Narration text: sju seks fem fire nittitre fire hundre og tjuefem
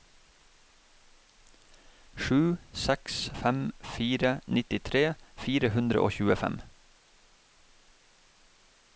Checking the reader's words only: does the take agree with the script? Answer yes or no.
yes